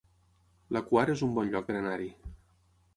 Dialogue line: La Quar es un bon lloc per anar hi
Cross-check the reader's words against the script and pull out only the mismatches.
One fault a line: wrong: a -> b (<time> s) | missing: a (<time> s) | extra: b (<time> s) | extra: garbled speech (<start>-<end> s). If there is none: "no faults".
no faults